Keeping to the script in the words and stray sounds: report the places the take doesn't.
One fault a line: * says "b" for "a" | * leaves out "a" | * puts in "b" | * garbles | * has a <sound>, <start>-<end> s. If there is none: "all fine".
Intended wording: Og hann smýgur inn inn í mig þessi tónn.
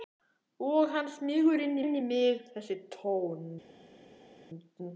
all fine